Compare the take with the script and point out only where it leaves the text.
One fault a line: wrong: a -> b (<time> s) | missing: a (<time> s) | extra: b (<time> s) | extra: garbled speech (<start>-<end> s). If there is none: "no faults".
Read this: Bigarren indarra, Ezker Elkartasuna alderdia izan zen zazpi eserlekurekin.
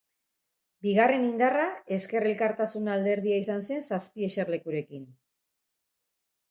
no faults